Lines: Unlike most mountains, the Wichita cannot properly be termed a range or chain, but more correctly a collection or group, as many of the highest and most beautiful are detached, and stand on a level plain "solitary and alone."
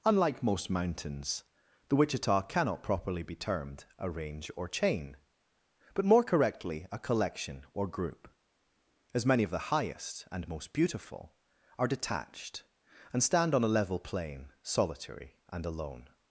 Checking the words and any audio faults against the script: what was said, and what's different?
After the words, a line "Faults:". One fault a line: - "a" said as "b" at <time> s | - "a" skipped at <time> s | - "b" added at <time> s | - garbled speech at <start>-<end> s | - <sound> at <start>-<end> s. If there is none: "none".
Unlike most mountains, the Wichita cannot properly be termed a range or chain, but more correctly a collection or group, as many of the highest and most beautiful are detached, and stand on a level plain "solitary and alone."
Faults:
none